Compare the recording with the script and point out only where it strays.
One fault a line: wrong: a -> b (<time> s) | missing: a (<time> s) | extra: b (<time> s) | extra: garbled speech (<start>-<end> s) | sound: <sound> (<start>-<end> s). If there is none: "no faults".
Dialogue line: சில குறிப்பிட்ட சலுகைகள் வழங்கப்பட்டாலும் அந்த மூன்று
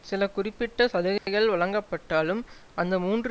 sound: dropout (1.2-1.3 s)